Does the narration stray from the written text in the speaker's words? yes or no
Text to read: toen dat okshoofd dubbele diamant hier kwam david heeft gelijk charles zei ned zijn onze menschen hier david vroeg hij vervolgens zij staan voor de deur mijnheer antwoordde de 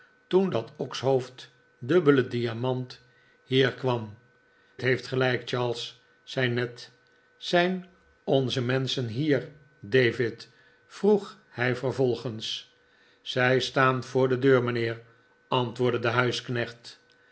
yes